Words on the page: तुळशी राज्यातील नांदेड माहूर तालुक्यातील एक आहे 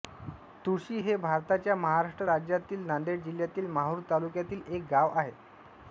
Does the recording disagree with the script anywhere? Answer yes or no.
yes